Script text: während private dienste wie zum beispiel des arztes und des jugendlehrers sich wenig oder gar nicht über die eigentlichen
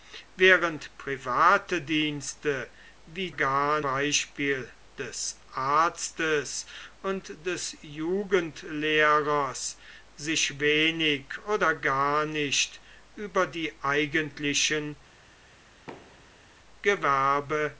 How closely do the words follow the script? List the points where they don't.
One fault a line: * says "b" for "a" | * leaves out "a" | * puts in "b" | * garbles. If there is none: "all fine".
* says "gar" for "zum"